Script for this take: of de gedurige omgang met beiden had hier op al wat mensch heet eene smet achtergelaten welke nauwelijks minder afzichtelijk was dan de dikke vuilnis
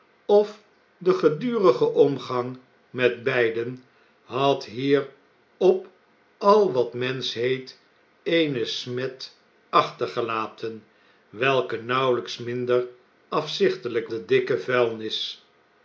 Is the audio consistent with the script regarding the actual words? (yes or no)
no